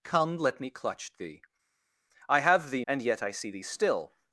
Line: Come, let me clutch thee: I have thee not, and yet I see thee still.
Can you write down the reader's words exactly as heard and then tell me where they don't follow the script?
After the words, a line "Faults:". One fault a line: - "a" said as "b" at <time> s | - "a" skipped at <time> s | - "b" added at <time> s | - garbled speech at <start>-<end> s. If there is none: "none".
Come, let me clutch thee: I have thee and yet I see thee still.
Faults:
- "not" skipped at 2.8 s